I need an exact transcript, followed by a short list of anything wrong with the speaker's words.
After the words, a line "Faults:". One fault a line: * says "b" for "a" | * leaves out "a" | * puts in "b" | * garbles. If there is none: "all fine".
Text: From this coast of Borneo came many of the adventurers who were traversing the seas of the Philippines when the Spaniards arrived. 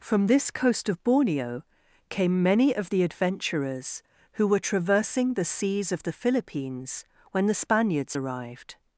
From this coast of Borneo came many of the adventurers who were traversing the seas of the Philippines when the Spaniards arrived.
Faults:
all fine